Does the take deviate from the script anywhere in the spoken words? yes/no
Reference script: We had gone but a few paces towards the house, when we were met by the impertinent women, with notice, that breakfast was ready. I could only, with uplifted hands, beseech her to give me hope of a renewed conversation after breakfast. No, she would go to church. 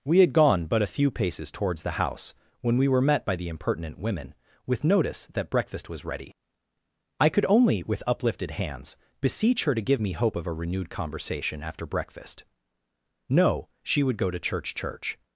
yes